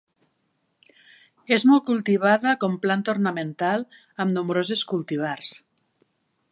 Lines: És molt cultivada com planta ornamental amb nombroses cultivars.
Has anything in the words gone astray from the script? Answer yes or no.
no